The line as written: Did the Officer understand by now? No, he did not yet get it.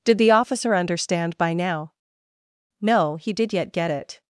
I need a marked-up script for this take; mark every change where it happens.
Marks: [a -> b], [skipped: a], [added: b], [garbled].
Did the Officer understand by now? No, he did [skipped: not] yet get it.